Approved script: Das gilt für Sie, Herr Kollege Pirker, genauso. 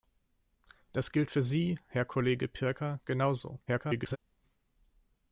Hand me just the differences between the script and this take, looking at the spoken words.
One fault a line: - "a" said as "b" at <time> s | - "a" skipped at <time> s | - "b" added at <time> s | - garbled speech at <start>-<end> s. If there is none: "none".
- garbled speech at 3.7-4.2 s